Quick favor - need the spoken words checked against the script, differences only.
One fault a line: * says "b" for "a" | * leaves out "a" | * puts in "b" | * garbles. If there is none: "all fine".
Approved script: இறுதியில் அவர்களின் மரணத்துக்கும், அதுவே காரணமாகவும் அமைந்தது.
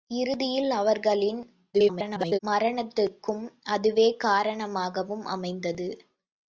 * garbles